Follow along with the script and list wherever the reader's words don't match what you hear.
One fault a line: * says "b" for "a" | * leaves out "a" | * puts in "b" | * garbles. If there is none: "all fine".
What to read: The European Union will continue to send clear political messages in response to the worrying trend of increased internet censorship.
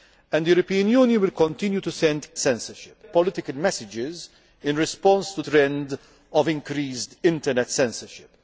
* says "censorship" for "clear"
* leaves out "the worrying"